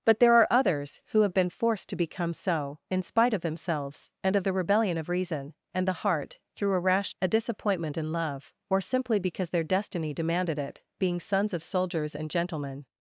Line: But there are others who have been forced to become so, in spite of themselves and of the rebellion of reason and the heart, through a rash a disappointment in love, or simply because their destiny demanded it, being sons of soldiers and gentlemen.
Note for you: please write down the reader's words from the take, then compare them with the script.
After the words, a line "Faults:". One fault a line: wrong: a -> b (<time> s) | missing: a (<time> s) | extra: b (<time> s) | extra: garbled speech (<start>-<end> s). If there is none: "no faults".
But there are others who have been forced to become so, in spite of themselves and of the rebellion of reason and the heart, through a rash a disappointment in love, or simply because their destiny demanded it, being sons of soldiers and gentlemen.
Faults:
no faults